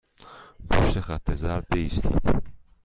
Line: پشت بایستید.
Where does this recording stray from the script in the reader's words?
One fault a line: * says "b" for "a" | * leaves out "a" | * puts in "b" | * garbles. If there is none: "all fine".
* puts in "خط زرد"